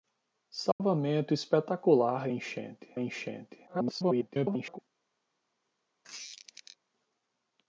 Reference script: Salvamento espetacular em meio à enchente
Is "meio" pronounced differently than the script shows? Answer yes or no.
yes